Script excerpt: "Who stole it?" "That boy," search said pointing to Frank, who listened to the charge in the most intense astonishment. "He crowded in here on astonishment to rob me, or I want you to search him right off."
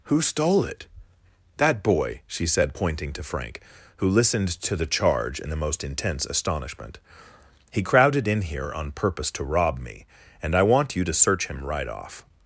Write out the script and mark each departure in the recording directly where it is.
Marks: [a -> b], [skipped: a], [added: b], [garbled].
"Who stole it?" "That boy," [search -> she] said pointing to Frank, who listened to the charge in the most intense astonishment. "He crowded in here on [astonishment -> purpose] to rob me, [or -> and] I want you to search him right off."